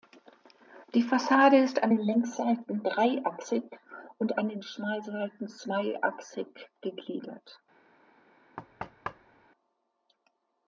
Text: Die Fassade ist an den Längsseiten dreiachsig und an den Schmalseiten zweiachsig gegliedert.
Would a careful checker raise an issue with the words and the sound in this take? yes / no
yes